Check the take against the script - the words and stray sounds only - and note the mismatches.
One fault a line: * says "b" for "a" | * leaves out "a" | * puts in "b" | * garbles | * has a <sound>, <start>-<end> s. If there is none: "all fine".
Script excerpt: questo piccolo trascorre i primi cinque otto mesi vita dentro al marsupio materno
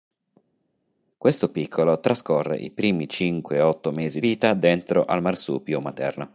all fine